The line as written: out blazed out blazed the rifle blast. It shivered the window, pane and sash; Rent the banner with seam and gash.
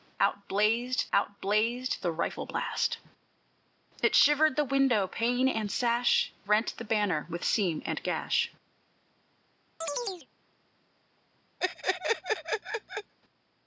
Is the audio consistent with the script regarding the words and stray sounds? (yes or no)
no